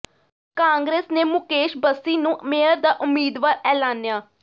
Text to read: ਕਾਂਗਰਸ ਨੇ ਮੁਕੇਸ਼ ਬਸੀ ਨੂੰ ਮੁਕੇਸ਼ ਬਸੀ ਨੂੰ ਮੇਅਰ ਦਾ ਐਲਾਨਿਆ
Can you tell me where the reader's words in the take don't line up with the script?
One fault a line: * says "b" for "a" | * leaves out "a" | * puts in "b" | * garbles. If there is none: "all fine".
* leaves out "ਮੁਕੇਸ਼ ਬਸੀ ਨੂੰ"
* puts in "ਉਮੀਦਵਾਰ"